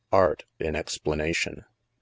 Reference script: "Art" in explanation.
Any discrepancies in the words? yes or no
no